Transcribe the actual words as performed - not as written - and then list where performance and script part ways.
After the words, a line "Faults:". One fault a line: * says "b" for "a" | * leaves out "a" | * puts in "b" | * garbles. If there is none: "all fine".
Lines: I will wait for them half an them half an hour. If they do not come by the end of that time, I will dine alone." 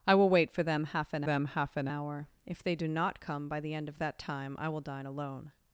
I will wait for them half an them half an hour. If they do not come by the end of that time, I will dine alone."
Faults:
all fine